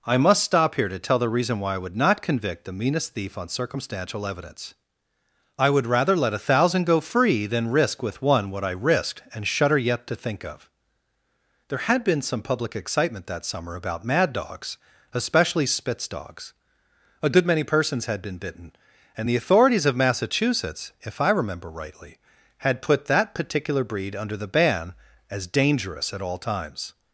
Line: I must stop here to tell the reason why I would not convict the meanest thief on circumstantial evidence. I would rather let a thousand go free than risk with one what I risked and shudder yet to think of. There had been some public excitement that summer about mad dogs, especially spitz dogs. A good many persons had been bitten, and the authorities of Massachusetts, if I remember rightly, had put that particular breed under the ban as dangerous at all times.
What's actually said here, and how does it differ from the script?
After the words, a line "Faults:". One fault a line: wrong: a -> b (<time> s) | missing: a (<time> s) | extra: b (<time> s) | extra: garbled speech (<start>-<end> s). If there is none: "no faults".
I must stop here to tell the reason why I would not convict the meanest thief on circumstantial evidence. I would rather let a thousand go free than risk with one what I risked and shudder yet to think of. There had been some public excitement that summer about mad dogs, especially spitz dogs. A good many persons had been bitten, and the authorities of Massachusetts, if I remember rightly, had put that particular breed under the ban as dangerous at all times.
Faults:
no faults